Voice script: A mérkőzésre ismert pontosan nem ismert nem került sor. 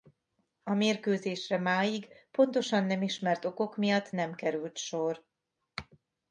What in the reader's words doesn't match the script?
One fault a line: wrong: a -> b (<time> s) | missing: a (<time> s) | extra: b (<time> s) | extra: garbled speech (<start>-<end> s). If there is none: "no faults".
wrong: ismert -> máig (1.6 s)
extra: okok miatt (3.5 s)